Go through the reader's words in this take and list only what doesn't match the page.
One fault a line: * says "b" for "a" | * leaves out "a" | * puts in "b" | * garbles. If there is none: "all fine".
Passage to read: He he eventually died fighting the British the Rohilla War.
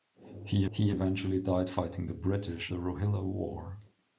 all fine